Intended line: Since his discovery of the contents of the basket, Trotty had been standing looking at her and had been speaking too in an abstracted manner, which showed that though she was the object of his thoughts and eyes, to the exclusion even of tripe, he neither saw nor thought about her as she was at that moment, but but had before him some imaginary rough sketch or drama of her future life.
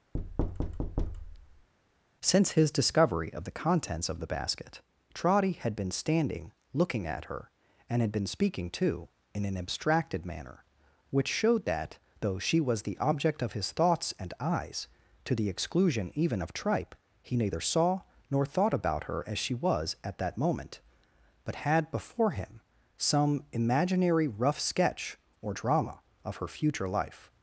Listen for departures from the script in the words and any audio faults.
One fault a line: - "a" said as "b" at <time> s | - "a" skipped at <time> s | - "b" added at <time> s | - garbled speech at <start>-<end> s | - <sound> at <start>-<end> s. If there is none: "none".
- thud at 0.1-1.7 s
- "but" skipped at 21.7 s